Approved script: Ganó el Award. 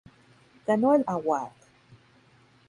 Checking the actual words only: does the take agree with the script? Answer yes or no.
yes